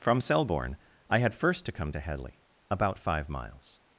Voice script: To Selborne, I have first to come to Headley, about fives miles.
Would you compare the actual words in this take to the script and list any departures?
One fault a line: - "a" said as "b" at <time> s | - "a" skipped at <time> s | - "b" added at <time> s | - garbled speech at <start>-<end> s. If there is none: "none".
- "To" said as "From" at 0.0 s
- "have" said as "had" at 1.2 s
- "fives" said as "five" at 3.0 s